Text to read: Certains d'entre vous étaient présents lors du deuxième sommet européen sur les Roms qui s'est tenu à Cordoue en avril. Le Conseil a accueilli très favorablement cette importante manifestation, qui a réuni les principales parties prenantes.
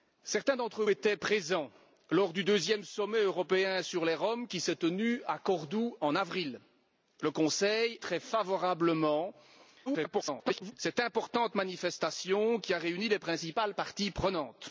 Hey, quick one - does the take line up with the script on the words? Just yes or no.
no